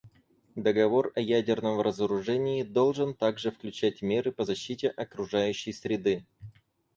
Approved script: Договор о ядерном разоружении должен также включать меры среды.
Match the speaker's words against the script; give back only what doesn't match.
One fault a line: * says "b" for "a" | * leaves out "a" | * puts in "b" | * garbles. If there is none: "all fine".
* puts in "по защите окружающей"